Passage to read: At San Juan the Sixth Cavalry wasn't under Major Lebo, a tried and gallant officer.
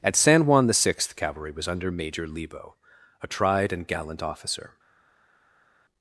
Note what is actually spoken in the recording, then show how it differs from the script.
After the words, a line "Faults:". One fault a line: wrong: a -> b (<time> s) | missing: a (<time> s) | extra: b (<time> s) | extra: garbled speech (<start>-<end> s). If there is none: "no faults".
At San Juan the Sixth Cavalry was under Major Lebo, a tried and gallant officer.
Faults:
wrong: wasn't -> was (1.5 s)